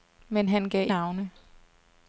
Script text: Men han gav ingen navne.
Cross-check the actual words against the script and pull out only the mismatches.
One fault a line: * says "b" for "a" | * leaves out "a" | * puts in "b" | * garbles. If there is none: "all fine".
* leaves out "ingen"